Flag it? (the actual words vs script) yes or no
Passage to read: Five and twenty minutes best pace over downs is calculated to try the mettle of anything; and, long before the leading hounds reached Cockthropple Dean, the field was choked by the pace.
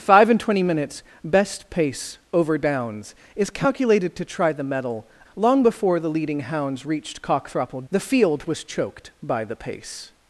yes